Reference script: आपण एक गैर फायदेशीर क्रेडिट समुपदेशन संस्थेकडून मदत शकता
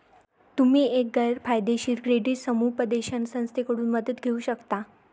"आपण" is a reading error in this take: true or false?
true